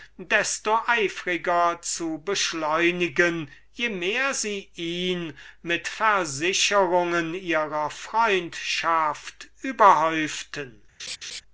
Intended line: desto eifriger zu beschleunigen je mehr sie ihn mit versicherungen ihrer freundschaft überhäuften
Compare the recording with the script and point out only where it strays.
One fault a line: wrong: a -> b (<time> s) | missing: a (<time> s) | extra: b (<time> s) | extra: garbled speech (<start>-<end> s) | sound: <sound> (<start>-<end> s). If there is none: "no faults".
sound: laugh (11.0-11.4 s)